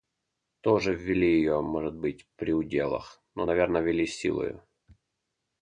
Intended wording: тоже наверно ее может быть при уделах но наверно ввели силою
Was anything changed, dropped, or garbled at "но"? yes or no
no